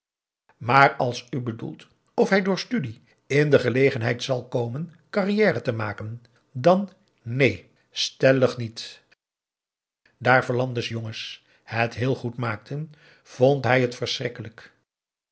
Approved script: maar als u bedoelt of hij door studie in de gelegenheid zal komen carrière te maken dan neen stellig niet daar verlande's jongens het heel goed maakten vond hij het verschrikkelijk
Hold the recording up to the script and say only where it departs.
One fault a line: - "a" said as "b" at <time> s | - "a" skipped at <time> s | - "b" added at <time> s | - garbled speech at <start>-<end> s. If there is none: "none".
none